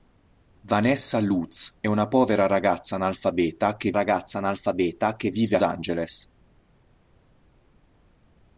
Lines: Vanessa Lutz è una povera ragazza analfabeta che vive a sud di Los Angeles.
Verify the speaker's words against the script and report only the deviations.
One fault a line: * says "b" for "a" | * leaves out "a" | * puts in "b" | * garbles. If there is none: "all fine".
* says "ragazza analfabeta che vive a" for "vive a sud di Los"